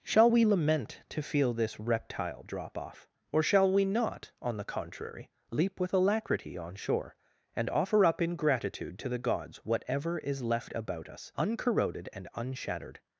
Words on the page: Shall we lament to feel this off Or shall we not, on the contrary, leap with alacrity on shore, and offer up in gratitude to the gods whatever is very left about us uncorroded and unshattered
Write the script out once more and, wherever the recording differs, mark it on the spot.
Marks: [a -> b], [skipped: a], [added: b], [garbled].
Shall we lament to feel this [added: reptile drop] off Or shall we not, on the contrary, leap with alacrity on shore, and offer up in gratitude to the gods whatever is [skipped: very] left about us uncorroded and unshattered